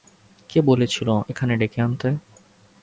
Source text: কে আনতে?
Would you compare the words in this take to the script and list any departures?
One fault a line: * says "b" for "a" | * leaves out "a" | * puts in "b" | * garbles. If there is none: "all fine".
* puts in "বলেছিল এখানে ডেকে"